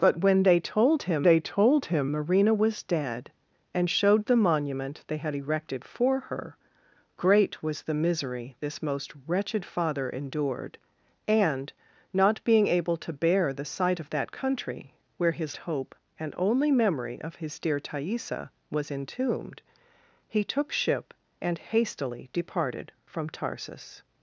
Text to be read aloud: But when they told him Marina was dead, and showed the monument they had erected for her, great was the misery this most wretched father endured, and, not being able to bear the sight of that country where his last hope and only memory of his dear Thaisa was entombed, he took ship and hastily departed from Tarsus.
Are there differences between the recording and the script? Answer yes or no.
yes